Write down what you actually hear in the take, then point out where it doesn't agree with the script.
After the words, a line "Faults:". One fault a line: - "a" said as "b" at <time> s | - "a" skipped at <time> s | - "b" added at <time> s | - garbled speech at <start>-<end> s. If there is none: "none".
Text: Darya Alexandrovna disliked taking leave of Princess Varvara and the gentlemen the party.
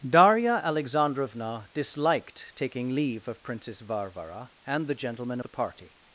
Darya Alexandrovna disliked taking leave of Princess Varvara and the gentlemen the party.
Faults:
none